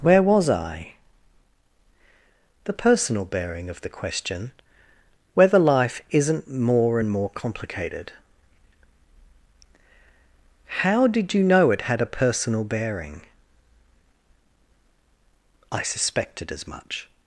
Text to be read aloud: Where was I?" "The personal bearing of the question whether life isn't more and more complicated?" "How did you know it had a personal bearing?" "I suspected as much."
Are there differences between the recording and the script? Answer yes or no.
no